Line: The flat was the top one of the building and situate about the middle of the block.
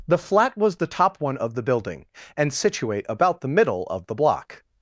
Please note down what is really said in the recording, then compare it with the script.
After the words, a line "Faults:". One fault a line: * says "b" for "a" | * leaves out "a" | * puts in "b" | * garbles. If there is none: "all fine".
The flat was the top one of the building and situate about the middle of the block.
Faults:
all fine